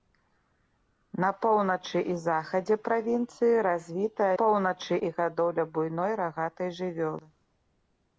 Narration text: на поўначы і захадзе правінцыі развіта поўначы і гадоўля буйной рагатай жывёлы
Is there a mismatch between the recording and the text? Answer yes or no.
no